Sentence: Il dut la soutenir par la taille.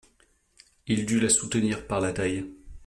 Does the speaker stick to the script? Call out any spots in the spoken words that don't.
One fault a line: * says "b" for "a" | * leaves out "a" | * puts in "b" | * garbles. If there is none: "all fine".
all fine